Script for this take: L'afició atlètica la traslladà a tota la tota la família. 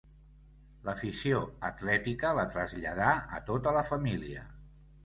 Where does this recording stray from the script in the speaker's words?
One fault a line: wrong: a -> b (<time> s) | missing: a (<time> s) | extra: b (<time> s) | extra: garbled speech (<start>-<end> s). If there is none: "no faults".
missing: tota la (3.9 s)